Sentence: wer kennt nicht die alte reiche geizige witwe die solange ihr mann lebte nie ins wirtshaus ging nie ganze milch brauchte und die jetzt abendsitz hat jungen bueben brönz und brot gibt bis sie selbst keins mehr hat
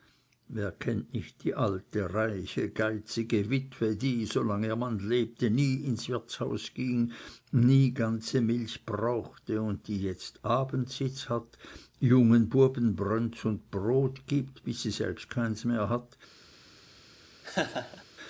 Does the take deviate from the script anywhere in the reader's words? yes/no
no